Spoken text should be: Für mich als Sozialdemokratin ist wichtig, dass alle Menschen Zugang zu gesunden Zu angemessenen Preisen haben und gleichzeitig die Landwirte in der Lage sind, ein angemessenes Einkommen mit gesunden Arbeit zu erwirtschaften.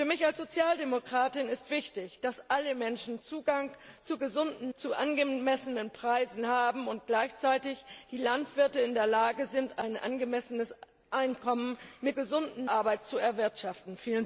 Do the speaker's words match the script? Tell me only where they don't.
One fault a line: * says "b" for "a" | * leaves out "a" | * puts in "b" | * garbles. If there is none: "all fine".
all fine